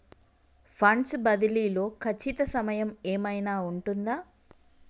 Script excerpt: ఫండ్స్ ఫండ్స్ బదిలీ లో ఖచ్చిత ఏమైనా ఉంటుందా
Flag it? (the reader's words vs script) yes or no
yes